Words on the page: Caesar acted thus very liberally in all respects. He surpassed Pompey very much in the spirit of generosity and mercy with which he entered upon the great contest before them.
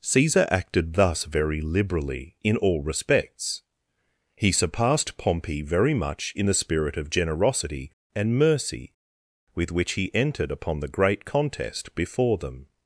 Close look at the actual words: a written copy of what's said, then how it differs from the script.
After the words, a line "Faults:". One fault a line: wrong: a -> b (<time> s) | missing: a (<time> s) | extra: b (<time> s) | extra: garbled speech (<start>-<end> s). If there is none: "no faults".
Caesar acted thus very liberally in all respects. He surpassed Pompey very much in the spirit of generosity and mercy with which he entered upon the great contest before them.
Faults:
no faults